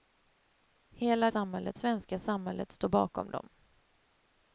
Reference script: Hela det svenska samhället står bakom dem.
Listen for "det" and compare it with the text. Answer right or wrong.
wrong